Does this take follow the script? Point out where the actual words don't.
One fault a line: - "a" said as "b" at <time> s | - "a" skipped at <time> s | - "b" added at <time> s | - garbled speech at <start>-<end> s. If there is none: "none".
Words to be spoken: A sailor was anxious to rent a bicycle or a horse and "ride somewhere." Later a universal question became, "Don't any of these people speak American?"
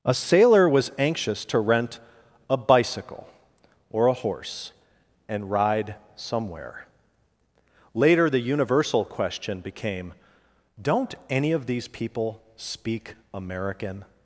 - "a" said as "the" at 8.3 s